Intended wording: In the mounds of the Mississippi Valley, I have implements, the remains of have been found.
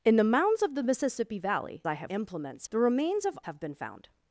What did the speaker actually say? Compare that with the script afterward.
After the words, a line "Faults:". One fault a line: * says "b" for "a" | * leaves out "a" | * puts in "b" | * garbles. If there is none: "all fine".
In the mounds of the Mississippi Valley, I have implements, the remains of have been found.
Faults:
all fine